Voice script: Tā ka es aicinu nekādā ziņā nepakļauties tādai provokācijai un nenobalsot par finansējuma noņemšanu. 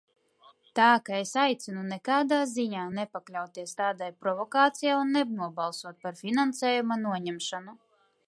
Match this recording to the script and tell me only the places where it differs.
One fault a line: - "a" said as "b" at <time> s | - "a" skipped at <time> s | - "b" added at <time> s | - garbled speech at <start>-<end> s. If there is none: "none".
none